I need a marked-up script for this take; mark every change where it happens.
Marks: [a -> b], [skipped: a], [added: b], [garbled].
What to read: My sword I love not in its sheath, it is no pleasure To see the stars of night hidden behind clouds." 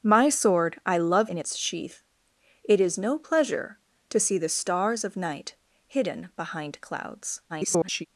My sword I love [skipped: not] in its sheath, it is no pleasure To see the stars of night hidden behind clouds." [garbled]